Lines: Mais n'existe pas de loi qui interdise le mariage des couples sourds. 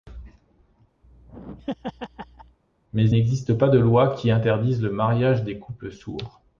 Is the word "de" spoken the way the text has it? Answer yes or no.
yes